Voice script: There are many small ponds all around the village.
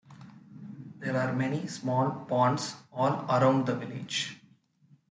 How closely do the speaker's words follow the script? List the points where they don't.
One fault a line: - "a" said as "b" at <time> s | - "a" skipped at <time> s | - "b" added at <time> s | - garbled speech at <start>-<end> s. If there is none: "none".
none